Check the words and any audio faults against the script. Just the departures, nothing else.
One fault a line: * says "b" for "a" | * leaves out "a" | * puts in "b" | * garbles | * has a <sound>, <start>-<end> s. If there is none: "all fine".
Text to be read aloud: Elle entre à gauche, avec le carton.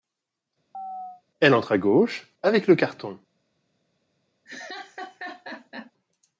* has a chirp, 0.7-1.2 s
* has a laugh, 4.5-5.9 s